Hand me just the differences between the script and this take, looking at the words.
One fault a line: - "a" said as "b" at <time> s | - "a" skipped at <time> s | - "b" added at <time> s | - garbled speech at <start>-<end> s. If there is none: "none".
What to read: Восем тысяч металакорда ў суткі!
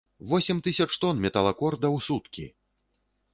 - "тон" added at 1.0 s